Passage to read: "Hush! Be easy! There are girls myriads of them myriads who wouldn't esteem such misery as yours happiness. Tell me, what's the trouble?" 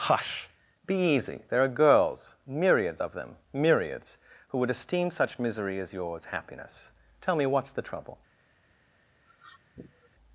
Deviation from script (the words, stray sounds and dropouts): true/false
true